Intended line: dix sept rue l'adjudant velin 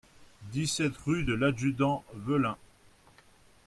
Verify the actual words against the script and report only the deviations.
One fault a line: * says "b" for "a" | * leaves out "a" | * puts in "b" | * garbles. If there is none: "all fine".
* puts in "de"